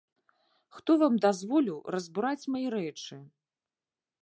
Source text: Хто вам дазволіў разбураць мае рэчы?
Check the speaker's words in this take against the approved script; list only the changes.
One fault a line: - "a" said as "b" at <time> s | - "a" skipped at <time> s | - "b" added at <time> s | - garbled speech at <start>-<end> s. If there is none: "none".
none